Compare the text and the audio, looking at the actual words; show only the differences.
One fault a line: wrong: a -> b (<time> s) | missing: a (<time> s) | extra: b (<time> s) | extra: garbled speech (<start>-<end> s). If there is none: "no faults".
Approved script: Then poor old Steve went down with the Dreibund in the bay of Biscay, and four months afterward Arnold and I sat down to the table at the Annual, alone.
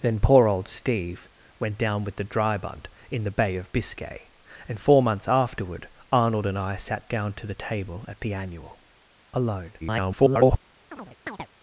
extra: garbled speech (9.8-10.6 s)